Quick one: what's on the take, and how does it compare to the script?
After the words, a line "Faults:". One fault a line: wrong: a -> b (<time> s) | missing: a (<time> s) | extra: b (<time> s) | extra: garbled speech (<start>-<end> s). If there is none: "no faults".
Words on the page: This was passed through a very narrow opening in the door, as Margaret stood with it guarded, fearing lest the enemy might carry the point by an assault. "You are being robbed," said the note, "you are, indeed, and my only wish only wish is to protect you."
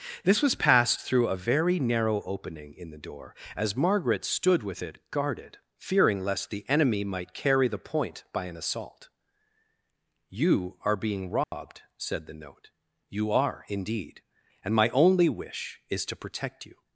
This was passed through a very narrow opening in the door, as Margaret stood with it guarded, fearing lest the enemy might carry the point by an assault. "You are being robbed," said the note, "you are, indeed, and my only wish is to protect you."
Faults:
missing: only wish (15.8 s)